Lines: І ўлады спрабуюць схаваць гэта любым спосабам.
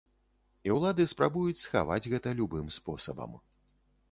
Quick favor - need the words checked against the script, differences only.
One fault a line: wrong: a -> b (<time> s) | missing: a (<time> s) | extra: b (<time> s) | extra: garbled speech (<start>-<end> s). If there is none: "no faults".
no faults